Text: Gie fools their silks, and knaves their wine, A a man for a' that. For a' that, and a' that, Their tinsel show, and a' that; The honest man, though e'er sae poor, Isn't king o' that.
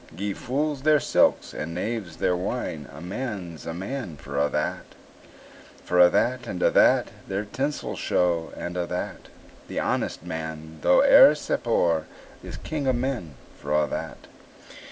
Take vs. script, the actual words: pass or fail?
fail